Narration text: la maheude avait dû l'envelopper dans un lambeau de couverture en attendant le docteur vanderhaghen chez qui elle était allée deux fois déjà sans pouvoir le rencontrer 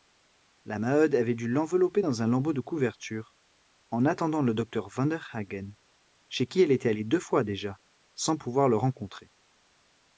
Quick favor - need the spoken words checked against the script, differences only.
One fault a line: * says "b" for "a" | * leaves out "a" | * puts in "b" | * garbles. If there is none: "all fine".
all fine